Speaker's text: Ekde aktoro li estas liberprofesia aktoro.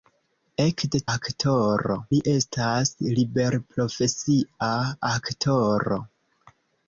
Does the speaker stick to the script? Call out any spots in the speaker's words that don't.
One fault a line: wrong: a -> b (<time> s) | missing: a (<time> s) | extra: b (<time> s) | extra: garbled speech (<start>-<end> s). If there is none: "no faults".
no faults